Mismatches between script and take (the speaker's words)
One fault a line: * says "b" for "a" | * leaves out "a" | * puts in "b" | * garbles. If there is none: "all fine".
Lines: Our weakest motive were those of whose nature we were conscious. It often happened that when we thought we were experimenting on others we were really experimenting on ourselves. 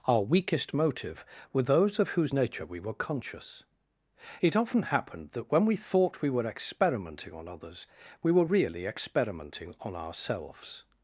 all fine